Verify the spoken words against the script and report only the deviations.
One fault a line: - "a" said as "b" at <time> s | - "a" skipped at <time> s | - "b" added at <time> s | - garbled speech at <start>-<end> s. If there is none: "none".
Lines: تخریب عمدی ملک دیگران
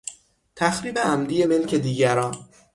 none